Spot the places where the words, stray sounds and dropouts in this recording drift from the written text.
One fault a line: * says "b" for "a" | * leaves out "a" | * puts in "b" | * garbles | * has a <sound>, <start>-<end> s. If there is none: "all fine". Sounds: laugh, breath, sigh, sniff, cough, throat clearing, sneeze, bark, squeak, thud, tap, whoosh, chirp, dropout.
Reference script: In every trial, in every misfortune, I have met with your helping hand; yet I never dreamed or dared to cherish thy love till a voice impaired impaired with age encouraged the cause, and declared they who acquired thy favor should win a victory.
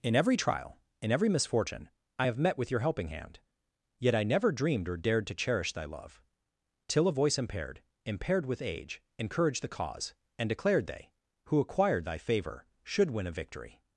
all fine